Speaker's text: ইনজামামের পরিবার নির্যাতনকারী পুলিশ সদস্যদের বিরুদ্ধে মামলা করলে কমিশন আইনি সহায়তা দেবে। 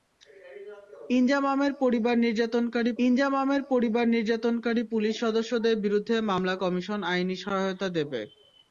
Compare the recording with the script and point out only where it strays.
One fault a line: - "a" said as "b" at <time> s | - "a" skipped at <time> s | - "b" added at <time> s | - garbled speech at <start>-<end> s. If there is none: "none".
- "ইনজামামের পরিবার নির্যাতনকারী" added at 3.0 s
- "করলে" skipped at 6.5 s